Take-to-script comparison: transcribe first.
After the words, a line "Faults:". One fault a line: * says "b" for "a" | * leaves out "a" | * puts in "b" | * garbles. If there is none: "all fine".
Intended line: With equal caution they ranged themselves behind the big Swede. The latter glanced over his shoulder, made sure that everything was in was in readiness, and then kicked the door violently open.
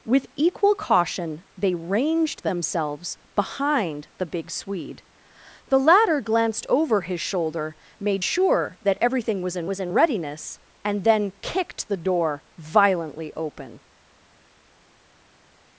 With equal caution they ranged themselves behind the big Swede. The latter glanced over his shoulder, made sure that everything was in was in readiness, and then kicked the door violently open.
Faults:
all fine